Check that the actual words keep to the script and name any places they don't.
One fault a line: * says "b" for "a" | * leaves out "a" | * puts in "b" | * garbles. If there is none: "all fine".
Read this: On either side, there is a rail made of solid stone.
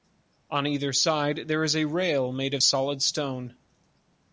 all fine